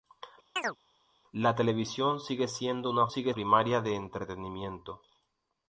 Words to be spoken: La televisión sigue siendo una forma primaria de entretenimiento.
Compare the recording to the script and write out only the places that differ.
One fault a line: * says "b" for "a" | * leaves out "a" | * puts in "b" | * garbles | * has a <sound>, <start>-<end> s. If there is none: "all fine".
* has a chirp, 0.6-0.8 s
* says "sigue" for "forma"